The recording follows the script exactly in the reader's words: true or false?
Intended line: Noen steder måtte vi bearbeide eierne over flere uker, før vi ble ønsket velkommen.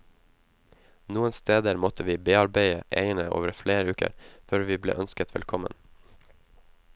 true